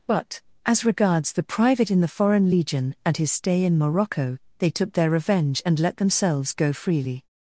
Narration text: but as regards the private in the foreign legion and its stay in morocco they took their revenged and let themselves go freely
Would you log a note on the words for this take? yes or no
yes